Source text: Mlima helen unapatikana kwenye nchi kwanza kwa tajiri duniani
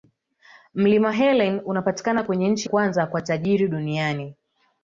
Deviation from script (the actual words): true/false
false